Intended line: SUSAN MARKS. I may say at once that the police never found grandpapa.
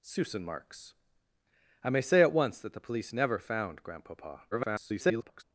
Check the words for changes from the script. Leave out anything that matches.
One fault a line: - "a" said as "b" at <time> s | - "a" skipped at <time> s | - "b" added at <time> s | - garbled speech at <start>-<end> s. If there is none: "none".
- garbled speech at 4.5-5.4 s